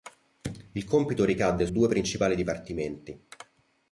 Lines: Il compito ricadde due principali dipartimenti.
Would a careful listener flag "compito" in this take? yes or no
no